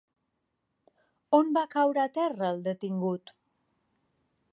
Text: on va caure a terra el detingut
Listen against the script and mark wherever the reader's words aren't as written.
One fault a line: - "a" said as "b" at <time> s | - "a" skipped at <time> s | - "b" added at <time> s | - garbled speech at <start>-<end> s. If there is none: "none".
none